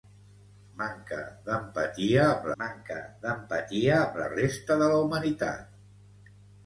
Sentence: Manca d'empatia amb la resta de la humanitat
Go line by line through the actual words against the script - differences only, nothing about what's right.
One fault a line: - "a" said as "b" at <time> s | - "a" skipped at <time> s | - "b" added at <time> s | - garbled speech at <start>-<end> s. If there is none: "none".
- "manca d'empatia amb" added at 2.6 s